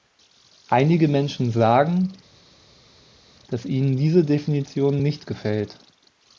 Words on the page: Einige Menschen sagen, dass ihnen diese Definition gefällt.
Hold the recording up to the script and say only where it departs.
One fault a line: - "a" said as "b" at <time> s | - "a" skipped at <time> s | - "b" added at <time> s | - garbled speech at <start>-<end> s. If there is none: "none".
- "nicht" added at 5.0 s